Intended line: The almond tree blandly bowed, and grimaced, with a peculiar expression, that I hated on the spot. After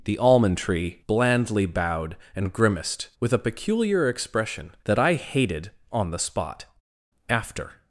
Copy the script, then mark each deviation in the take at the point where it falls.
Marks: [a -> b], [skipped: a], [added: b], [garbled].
The almond tree blandly bowed, and grimaced, with a peculiar expression, that I hated on the spot. After